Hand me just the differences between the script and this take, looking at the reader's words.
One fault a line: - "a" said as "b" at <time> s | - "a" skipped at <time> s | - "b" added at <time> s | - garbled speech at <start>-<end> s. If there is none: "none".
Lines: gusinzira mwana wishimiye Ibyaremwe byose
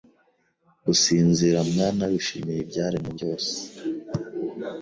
none